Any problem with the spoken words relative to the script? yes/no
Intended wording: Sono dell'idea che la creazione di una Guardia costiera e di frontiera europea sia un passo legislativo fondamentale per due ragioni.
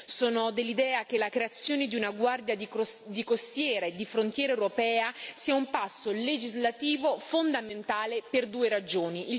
no